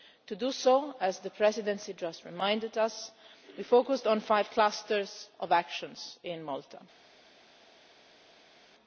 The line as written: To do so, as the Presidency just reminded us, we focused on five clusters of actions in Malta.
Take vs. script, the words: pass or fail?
pass